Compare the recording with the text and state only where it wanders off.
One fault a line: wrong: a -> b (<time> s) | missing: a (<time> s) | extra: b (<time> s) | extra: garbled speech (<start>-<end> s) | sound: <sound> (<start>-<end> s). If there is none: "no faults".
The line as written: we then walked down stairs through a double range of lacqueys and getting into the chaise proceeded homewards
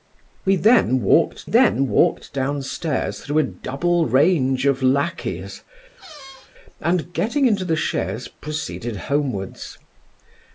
extra: then walked (1.4 s)
sound: squeak (6.0-6.5 s)